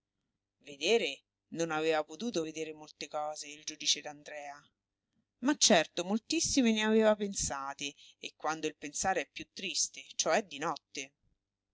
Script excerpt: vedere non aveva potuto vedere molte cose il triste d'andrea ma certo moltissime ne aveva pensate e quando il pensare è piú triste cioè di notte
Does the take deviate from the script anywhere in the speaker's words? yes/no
yes